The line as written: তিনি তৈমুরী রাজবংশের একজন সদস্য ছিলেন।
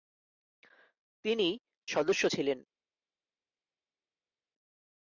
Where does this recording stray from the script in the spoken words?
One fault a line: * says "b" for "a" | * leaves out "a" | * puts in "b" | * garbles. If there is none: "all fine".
* leaves out "তৈমুরী রাজবংশের একজন"